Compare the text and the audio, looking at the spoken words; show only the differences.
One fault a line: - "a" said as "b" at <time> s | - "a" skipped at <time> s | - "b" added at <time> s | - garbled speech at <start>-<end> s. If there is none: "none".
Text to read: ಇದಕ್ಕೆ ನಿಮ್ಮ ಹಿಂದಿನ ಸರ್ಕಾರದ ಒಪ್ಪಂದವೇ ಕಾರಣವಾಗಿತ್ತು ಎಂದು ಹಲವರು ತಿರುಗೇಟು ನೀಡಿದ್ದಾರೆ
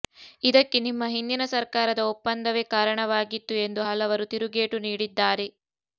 none